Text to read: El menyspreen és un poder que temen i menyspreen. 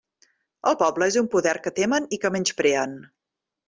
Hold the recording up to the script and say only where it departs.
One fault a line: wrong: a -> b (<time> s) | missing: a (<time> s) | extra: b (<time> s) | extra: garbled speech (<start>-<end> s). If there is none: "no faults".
wrong: menyspreen -> poble (0.8 s)
extra: que (2.2 s)